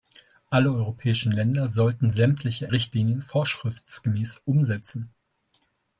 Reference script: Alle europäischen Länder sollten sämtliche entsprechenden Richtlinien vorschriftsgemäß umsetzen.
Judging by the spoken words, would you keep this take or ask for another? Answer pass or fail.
fail